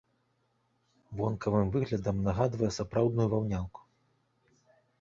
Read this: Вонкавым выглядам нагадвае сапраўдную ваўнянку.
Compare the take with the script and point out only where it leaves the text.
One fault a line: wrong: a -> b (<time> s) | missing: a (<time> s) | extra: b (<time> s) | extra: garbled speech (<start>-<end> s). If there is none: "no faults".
no faults